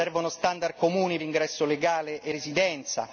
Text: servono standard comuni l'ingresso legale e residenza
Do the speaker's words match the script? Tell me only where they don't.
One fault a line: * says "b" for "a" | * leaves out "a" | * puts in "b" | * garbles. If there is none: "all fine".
all fine